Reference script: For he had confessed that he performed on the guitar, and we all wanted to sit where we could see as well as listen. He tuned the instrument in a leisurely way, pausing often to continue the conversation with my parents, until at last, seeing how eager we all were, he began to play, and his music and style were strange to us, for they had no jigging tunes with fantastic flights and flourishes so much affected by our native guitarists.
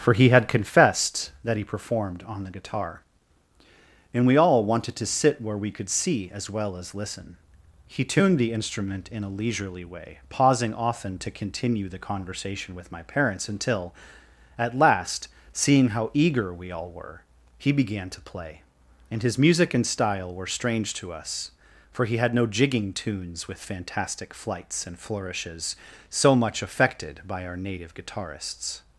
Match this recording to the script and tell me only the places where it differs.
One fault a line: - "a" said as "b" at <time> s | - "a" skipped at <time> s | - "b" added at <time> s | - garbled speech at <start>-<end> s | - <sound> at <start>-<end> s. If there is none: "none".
- "they" said as "he" at 22.1 s